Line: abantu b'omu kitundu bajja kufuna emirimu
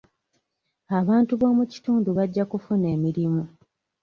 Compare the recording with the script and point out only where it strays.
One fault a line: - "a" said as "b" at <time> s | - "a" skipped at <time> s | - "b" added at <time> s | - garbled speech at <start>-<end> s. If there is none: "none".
none